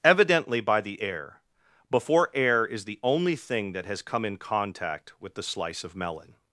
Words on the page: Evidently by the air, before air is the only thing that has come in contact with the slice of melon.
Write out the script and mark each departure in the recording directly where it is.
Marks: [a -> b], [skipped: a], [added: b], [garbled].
Evidently by the air, before air is the only thing that has come in contact with the slice of melon.